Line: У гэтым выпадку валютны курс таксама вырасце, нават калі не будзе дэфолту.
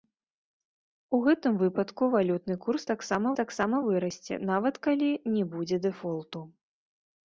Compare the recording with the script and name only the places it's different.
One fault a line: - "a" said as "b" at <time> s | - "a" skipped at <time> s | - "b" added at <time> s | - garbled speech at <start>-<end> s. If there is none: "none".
- "таксама" added at 3.4 s